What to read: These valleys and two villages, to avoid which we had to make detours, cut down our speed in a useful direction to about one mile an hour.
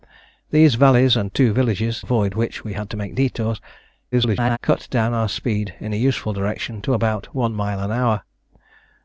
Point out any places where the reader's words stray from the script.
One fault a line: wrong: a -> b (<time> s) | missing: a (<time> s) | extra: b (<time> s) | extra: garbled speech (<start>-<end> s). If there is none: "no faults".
missing: to (2.0 s)
extra: garbled speech (4.1-4.6 s)